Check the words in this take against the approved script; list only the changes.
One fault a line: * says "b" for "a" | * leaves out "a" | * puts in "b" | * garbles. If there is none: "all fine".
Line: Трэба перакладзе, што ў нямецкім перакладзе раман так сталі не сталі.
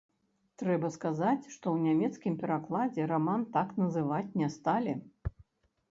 * says "сказаць" for "перакладзе"
* says "называць" for "сталі"